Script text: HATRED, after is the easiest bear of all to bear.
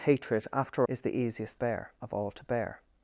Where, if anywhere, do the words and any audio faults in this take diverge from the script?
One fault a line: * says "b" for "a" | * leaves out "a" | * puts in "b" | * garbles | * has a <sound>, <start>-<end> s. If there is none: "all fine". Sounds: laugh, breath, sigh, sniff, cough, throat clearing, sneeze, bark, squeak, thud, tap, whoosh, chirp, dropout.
all fine